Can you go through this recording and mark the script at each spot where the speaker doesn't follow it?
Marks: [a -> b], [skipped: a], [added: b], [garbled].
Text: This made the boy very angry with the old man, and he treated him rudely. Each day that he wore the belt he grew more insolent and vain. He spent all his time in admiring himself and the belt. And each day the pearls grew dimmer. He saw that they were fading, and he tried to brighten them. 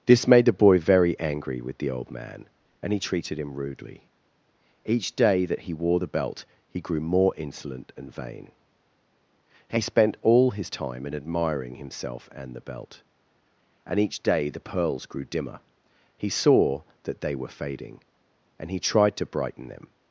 This made the boy very angry with the old man, and he treated him rudely. Each day that he wore the belt he grew more insolent and vain. He spent all his time in admiring himself and the belt. And each day the pearls grew dimmer. He saw that they were fading, and he tried to brighten them.